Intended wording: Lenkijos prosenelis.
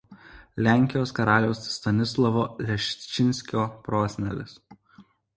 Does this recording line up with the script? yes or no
no